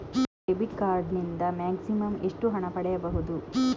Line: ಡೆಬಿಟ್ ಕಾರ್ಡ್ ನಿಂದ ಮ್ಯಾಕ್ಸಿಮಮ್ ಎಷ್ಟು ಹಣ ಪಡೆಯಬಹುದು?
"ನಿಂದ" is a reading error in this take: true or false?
false